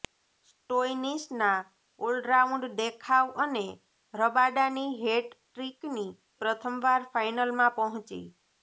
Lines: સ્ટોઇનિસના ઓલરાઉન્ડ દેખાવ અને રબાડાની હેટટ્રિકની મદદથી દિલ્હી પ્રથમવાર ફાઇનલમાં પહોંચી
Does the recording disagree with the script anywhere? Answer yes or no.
yes